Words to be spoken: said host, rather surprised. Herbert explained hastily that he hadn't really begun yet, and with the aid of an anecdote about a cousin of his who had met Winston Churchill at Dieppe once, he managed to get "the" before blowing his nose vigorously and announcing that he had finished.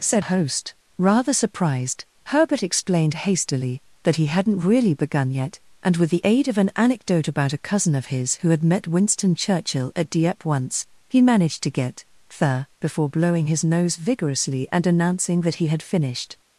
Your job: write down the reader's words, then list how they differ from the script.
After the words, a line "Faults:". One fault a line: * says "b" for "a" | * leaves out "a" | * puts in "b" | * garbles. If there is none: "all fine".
said host, rather surprised. Herbert explained hastily that he hadn't really begun yet, and with the aid of an anecdote about a cousin of his who had met Winston Churchill at Dieppe once, he managed to get "the" before blowing his nose vigorously and announcing that he had finished.
Faults:
all fine